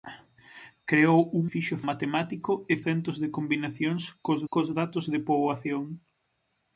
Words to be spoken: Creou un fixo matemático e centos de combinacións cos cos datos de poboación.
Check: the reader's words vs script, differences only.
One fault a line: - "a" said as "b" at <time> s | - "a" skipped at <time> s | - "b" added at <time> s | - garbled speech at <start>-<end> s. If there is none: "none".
none